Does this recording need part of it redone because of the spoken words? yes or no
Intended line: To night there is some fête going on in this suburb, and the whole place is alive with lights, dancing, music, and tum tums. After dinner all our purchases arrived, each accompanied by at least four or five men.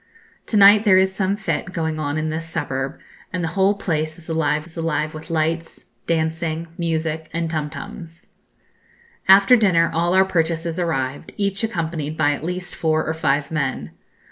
yes